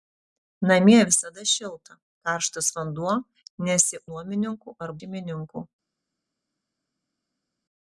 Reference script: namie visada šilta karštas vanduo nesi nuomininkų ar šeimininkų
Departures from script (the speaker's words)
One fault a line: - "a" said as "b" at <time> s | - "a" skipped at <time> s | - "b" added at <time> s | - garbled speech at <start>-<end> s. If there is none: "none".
none